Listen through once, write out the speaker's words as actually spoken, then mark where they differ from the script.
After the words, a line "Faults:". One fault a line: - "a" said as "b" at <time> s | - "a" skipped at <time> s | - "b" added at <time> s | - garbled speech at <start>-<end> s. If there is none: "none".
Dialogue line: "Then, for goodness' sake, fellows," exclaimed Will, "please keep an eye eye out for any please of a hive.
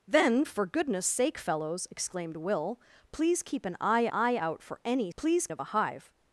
"Then, for goodness' sake, fellows," exclaimed Will, "please keep an eye eye out for any please of a hive.
Faults:
none